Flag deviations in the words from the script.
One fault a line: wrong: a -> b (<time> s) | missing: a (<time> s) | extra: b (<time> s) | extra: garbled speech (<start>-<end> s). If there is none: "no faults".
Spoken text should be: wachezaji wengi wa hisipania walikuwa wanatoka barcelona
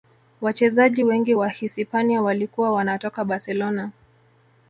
no faults